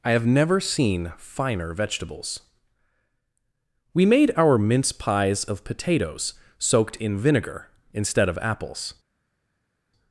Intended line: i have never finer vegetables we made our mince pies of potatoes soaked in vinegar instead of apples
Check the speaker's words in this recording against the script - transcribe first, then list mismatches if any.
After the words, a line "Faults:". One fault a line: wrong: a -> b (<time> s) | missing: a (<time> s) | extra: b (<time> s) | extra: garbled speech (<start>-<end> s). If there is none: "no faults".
i have never seen finer vegetables we made our mince pies of potatoes soaked in vinegar instead of apples
Faults:
extra: seen (0.6 s)